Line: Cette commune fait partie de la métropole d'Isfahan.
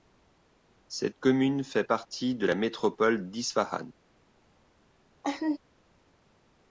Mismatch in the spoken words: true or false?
false